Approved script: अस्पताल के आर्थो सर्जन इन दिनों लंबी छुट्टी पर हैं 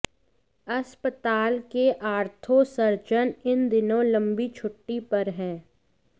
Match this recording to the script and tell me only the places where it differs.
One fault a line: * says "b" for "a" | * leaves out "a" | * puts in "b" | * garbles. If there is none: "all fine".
all fine